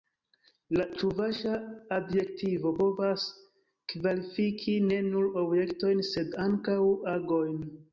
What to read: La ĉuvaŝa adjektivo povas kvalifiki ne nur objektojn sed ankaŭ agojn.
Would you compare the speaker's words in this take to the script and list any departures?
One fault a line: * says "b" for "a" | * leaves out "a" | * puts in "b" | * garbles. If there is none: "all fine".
all fine